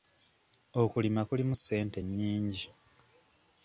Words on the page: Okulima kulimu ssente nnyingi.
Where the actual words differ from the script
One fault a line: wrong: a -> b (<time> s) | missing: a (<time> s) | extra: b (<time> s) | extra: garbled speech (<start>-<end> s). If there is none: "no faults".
no faults